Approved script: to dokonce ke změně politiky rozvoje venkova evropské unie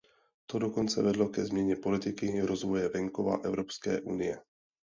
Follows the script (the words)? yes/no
no